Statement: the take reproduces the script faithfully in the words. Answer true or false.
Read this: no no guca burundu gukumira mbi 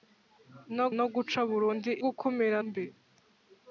true